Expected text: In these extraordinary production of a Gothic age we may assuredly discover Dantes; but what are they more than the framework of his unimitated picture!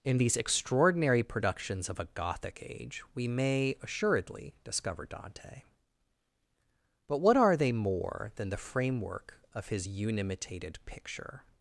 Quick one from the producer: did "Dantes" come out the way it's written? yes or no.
no